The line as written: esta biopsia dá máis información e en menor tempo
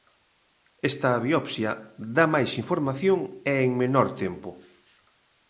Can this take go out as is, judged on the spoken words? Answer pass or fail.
pass